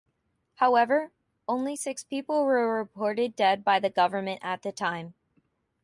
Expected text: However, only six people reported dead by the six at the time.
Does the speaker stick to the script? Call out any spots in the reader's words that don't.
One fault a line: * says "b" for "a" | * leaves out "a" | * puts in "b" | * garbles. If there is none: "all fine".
* puts in "were"
* says "government" for "six"